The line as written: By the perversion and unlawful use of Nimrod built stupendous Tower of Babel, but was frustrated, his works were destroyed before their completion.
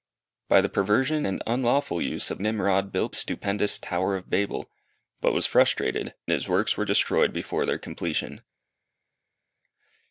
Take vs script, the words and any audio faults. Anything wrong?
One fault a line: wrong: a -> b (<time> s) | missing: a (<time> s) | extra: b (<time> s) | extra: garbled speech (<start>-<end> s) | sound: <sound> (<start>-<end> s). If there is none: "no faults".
no faults